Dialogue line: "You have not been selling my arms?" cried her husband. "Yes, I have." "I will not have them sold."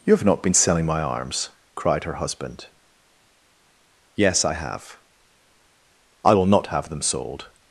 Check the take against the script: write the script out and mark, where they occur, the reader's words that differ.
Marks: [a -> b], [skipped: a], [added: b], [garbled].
"You have not been selling my arms?" cried her husband. "Yes, I have." "I will not have them sold."